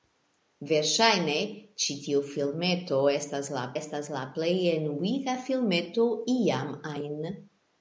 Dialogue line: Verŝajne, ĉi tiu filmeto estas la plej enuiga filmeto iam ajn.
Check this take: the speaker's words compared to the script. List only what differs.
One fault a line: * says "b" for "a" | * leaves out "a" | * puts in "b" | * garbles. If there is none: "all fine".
* puts in "estas la"